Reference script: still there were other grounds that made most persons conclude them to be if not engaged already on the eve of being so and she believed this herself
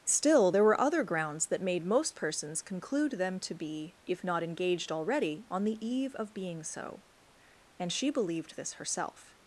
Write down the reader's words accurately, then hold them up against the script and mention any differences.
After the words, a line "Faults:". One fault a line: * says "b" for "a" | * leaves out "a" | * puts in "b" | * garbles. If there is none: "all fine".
still there were other grounds that made most persons conclude them to be if not engaged already on the eve of being so and she believed this herself
Faults:
all fine